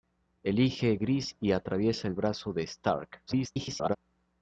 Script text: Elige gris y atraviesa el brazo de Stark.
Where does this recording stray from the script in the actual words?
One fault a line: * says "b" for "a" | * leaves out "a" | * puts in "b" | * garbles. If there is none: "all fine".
* garbles